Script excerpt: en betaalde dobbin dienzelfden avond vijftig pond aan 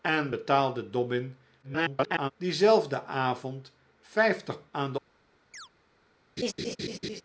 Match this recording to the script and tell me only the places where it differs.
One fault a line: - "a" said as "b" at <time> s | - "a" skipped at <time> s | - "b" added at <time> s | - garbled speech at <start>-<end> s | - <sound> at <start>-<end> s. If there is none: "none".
- garbled speech at 1.6-2.3 s
- "pond" skipped at 4.7 s
- chirp at 5.5-5.7 s
- laugh at 6.4-7.2 s